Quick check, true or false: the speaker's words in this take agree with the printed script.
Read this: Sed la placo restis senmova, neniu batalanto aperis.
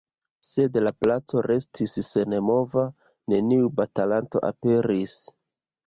true